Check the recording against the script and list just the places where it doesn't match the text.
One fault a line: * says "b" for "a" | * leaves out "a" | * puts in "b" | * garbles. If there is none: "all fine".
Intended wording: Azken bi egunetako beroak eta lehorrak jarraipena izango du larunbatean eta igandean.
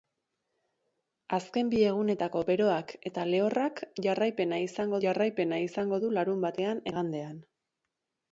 * puts in "jarraipena izango"
* leaves out "eta"